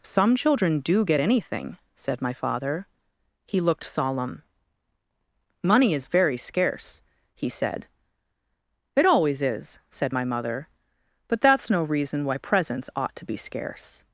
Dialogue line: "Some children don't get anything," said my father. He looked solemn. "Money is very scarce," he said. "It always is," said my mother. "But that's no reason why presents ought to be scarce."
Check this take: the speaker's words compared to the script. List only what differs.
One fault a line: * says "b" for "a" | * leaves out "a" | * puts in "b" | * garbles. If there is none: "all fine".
* says "do" for "don't"